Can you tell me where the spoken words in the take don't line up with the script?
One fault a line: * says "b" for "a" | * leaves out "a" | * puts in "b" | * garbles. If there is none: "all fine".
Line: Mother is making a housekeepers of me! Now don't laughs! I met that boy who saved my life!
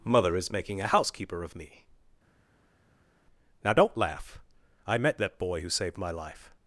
* says "housekeeper" for "housekeepers"
* says "laugh" for "laughs"